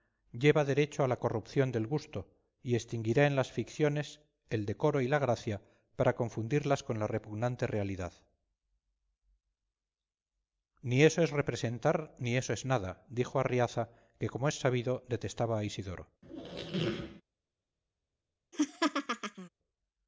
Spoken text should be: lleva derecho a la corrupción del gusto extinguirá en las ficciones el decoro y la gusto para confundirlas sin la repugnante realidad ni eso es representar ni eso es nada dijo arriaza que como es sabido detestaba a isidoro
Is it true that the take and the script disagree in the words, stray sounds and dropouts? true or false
true